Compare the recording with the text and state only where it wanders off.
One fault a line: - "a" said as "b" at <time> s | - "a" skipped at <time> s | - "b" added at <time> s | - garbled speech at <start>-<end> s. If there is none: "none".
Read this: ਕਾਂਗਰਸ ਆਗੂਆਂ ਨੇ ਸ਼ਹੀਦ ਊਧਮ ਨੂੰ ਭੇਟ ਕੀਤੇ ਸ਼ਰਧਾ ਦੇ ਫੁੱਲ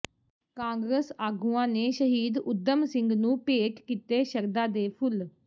- "ਸਿੰਘ" added at 2.9 s